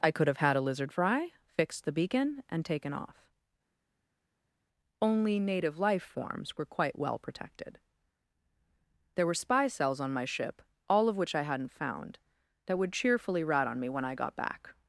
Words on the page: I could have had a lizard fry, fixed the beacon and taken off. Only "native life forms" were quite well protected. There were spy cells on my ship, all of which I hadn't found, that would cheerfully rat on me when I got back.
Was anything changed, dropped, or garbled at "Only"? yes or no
no